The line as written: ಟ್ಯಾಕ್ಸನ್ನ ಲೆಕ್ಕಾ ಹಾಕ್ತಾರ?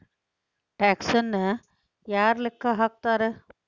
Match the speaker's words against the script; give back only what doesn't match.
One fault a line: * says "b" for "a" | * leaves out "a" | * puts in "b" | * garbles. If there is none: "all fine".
* puts in "ಯಾರ್"